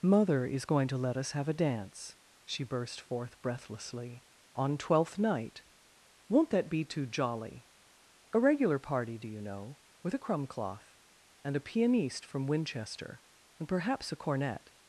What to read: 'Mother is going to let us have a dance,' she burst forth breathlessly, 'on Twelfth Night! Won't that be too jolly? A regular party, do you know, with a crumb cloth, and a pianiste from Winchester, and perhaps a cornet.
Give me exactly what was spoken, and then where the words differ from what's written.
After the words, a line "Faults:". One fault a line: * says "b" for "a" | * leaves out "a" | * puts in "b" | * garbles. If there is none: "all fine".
'Mother is going to let us have a dance,' she burst forth breathlessly, 'on Twelfth Night! Won't that be too jolly? A regular party, do you know, with a crumb cloth, and a pianiste from Winchester, and perhaps a cornet.
Faults:
all fine